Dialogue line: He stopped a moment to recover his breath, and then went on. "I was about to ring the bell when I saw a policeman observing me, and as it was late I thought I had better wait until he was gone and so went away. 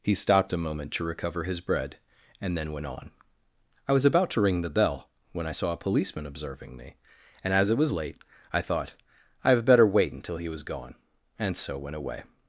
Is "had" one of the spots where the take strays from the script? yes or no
yes